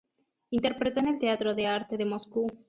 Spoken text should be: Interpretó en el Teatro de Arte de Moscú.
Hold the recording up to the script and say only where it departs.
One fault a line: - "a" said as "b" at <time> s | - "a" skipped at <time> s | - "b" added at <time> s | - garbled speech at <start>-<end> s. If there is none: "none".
none